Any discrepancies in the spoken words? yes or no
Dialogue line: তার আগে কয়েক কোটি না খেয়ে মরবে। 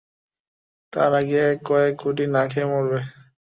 no